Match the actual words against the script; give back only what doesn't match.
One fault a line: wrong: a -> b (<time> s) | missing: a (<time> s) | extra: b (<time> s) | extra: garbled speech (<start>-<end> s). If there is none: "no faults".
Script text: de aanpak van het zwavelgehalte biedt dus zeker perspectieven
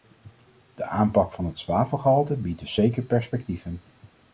no faults